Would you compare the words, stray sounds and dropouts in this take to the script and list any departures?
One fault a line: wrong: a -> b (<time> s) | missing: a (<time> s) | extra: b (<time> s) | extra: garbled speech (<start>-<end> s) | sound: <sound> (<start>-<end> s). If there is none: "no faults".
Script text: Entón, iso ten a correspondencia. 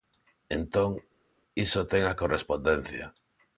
no faults